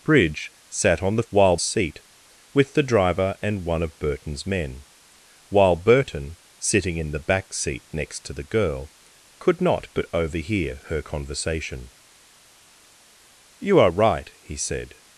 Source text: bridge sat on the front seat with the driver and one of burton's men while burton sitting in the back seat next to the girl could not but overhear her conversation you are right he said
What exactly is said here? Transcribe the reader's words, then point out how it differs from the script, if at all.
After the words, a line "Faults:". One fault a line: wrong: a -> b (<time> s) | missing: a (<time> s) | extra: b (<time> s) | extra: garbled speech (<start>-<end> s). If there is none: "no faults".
bridge sat on the while seat with the driver and one of burton's men while burton sitting in the back seat next to the girl could not but overhear her conversation you are right he said
Faults:
wrong: front -> while (1.3 s)